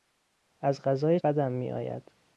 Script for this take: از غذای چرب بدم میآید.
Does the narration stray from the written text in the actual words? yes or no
yes